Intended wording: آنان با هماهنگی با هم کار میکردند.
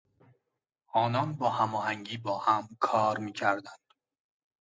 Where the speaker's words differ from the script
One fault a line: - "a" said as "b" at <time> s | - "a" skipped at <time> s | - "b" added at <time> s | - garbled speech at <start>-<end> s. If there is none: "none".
none